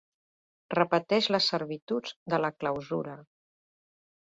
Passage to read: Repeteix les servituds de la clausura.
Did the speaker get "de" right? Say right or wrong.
right